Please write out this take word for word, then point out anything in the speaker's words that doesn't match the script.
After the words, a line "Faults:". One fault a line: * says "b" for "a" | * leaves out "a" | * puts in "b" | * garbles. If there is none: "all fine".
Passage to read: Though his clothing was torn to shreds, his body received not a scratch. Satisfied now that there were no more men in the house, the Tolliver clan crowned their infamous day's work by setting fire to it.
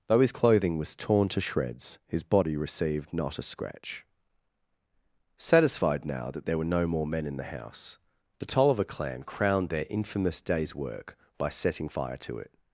Though his clothing was torn to shreds, his body received not a scratch. Satisfied now that there were no more men in the house, the Tolliver clan crowned their infamous day's work by setting fire to it.
Faults:
all fine